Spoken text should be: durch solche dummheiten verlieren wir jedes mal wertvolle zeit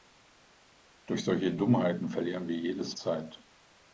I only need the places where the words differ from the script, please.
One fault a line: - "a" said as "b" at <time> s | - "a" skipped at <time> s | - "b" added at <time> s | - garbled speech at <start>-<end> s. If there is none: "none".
- "mal wertvolle" skipped at 3.0 s